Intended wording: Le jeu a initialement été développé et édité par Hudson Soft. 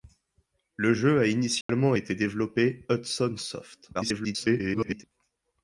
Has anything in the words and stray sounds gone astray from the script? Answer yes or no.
yes